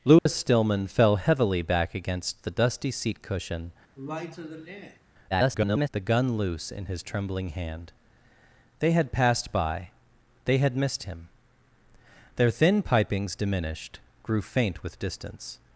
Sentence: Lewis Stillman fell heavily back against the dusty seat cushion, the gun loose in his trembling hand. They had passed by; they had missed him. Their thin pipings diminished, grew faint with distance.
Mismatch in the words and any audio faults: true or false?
true